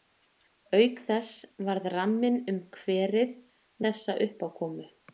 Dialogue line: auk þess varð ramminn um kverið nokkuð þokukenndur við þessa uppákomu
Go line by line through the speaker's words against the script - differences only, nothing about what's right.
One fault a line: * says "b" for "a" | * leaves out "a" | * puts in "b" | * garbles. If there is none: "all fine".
* leaves out "nokkuð þokukenndur við"